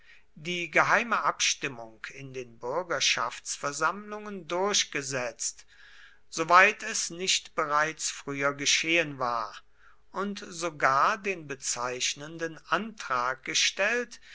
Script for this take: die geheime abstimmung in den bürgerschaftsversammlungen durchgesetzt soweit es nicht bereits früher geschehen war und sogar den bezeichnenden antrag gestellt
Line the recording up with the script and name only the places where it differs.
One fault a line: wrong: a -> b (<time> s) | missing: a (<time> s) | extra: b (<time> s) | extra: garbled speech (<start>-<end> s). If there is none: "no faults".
no faults